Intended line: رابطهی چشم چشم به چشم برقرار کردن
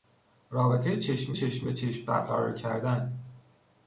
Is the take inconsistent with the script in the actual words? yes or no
no